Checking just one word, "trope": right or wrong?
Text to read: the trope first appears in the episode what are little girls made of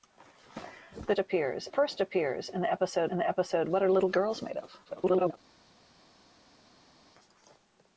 wrong